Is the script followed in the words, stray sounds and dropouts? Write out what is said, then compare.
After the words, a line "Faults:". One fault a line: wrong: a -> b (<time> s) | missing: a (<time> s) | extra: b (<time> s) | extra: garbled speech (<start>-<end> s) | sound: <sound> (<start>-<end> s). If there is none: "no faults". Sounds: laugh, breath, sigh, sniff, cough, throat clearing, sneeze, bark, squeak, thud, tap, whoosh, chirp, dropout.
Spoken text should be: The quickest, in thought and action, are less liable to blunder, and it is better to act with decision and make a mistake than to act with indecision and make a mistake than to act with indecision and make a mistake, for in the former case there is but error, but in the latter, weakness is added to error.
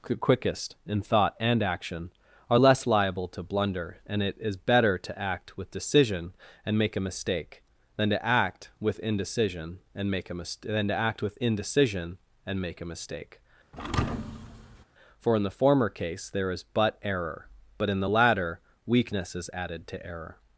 quickest, in thought and action, are less liable to blunder, and it is better to act with decision and make a mistake than to act with indecision and make a mis than to act with indecision and make a mistake, for in the former case there is but error, but in the latter, weakness is added to error.
Faults:
missing: The (0.0 s)
wrong: mistake -> mis (10.3 s)
sound: thud (13.7-14.8 s)